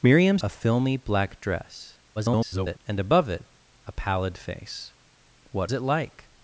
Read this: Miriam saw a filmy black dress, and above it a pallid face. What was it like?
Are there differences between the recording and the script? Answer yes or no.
yes